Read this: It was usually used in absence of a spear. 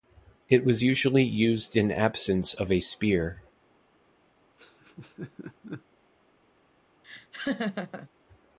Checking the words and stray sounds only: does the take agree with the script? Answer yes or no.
no